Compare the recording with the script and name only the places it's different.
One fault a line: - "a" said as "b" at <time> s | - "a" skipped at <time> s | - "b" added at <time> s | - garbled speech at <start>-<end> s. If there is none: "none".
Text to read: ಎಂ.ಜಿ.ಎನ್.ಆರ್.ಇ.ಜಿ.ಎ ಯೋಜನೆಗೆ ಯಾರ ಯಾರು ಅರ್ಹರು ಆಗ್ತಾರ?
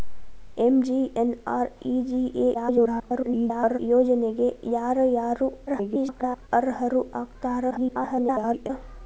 - garbled speech at 2.5-3.8 s
- garbled speech at 5.7-6.5 s
- garbled speech at 7.7-8.7 s